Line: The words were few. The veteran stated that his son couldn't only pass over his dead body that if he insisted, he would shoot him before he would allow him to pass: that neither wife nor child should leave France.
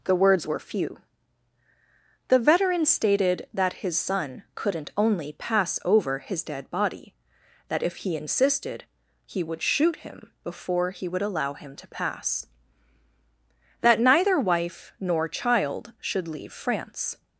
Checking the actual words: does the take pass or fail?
pass